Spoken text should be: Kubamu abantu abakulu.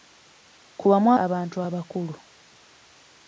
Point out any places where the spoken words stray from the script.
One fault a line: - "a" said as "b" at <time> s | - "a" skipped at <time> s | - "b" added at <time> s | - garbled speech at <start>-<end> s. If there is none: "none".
none